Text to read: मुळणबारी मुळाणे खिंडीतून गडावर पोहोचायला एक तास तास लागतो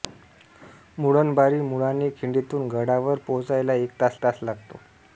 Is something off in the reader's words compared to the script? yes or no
no